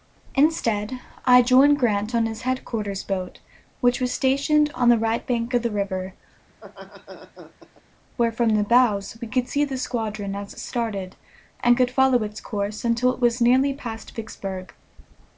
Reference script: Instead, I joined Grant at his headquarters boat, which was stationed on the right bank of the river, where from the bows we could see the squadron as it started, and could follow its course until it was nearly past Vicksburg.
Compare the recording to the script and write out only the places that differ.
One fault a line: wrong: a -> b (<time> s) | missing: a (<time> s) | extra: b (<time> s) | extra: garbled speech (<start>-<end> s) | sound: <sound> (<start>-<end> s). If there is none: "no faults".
wrong: at -> on (2.1 s)
sound: laugh (6.5-7.8 s)